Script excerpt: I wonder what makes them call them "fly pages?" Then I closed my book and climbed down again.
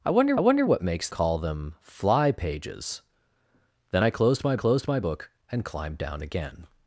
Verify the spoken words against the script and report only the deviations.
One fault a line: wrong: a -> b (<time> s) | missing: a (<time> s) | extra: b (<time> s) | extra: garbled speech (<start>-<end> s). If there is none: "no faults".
extra: wonder (0.4 s)
missing: them (1.1 s)
extra: closed my (4.5 s)